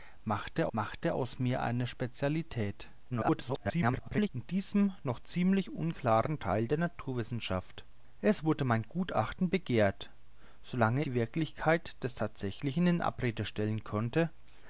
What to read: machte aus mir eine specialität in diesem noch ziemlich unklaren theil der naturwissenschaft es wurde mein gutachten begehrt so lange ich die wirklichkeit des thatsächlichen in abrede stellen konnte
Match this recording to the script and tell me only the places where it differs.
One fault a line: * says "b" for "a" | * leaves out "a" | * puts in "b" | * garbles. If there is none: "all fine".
* puts in "machte"
* garbles
* leaves out "ich"